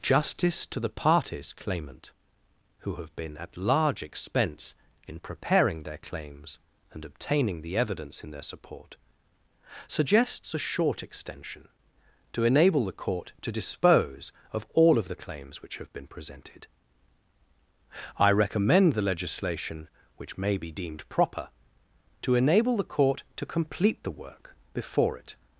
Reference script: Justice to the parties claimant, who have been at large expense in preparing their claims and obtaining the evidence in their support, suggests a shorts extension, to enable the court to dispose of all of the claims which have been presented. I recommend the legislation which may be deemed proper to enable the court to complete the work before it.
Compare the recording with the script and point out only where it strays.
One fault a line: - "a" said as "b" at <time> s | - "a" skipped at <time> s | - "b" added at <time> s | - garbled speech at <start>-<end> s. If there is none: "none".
- "shorts" said as "short" at 10.6 s